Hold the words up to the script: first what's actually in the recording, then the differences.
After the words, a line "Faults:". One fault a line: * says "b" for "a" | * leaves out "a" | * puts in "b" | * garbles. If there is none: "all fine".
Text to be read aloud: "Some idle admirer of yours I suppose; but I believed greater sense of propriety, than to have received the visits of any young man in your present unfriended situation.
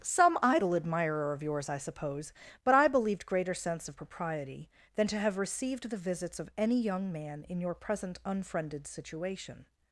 "Some idle admirer of yours I suppose; but I believed greater sense of propriety, than to have received the visits of any young man in your present unfriended situation.
Faults:
all fine